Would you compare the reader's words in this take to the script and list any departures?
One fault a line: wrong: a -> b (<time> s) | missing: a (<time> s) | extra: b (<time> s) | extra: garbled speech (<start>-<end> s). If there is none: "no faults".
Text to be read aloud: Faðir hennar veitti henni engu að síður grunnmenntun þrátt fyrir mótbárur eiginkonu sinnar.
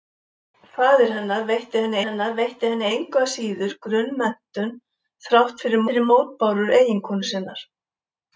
extra: hennar veitti henni (2.1 s)
extra: fyrir (5.9 s)